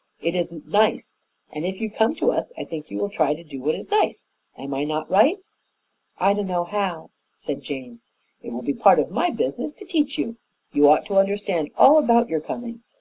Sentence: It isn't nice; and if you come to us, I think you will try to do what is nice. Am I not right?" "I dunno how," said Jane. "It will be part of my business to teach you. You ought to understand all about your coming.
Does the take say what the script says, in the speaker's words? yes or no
yes